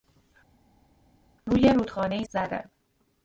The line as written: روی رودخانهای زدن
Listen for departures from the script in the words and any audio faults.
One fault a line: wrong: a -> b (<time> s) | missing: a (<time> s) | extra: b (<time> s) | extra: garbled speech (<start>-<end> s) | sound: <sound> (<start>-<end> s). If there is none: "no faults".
no faults